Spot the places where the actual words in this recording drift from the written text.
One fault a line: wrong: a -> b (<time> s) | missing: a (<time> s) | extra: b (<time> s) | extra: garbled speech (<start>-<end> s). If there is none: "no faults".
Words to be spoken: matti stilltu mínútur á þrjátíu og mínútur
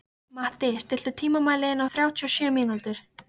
wrong: mínútur -> tímamælinn (1.2 s)
extra: sjö (2.4 s)